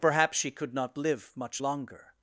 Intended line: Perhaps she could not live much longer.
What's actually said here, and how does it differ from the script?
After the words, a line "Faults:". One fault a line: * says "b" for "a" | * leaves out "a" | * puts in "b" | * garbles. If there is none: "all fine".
Perhaps she could not live much longer.
Faults:
all fine